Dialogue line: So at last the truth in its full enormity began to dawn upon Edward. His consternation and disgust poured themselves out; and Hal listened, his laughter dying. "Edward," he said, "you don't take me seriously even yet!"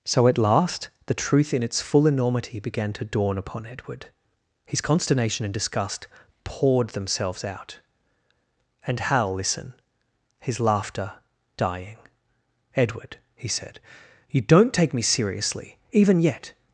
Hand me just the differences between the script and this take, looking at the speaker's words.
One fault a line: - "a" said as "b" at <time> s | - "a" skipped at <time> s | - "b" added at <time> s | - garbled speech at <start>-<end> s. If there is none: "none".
- "listened" said as "listen" at 9.3 s